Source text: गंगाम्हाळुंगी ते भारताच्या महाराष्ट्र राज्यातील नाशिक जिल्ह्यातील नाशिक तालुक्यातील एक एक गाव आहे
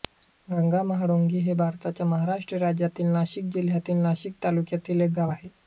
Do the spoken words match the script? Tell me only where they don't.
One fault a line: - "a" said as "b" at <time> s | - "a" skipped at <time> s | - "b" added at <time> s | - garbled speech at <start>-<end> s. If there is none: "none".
- "ते" said as "हे" at 1.4 s
- "एक" skipped at 5.1 s